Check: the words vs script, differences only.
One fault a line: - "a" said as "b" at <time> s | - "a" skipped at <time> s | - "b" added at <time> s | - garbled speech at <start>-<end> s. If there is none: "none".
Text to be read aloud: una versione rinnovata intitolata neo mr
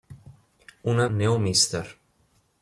- "versione rinnovata intitolata" skipped at 1.1 s